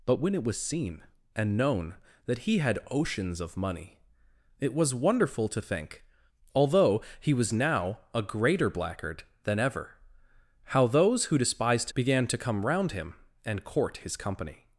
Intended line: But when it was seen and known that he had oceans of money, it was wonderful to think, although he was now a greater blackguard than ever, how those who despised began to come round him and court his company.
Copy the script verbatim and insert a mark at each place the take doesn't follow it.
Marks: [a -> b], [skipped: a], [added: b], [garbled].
But when it was seen and known that he had oceans of money, it was wonderful to think, although he was now a greater blackguard than ever, how those who despised began to come round him and court his company.